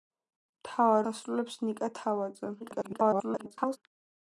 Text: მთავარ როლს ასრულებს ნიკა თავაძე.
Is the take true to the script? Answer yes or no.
no